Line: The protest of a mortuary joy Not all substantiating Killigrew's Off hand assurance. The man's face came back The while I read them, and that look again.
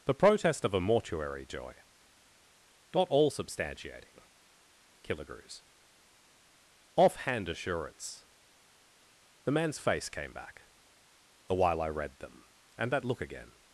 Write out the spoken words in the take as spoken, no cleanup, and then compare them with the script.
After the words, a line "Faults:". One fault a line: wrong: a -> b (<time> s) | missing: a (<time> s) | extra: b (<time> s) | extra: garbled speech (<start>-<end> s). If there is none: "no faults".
The protest of a mortuary joy Not all substantiating Killigrew's Off hand assurance. The man's face came back The while I read them, and that look again.
Faults:
no faults